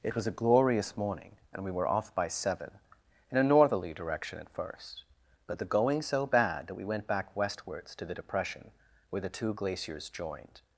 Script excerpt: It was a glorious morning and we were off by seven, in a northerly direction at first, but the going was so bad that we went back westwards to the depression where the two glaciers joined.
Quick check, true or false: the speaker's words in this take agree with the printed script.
false